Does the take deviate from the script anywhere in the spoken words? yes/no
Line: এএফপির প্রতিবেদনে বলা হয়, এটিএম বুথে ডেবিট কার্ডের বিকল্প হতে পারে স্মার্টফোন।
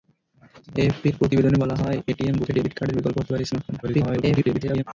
yes